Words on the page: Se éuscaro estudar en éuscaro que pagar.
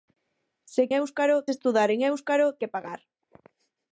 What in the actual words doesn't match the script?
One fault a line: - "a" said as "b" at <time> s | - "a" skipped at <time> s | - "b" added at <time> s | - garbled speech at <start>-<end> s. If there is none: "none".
none